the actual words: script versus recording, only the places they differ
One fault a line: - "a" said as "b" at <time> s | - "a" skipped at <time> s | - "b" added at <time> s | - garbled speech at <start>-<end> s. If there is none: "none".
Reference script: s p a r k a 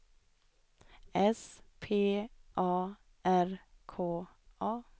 none